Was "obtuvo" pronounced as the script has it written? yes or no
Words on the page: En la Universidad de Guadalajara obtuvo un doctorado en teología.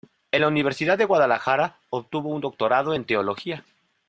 yes